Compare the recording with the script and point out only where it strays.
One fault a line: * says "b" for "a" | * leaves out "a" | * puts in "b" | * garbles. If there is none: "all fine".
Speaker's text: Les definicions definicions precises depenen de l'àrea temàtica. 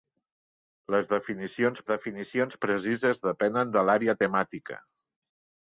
all fine